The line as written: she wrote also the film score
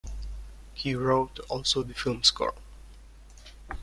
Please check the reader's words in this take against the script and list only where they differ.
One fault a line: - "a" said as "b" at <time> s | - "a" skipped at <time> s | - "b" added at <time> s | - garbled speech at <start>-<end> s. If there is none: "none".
- "she" said as "he" at 0.8 s